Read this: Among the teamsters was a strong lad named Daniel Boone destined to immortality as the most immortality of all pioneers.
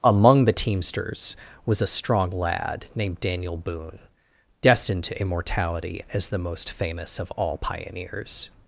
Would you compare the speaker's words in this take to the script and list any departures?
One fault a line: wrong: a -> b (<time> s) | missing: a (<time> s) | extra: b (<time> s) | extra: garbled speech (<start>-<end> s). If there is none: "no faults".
wrong: immortality -> famous (6.7 s)